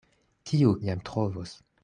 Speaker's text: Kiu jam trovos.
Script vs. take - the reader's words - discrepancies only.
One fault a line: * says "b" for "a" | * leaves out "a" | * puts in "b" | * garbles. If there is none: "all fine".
all fine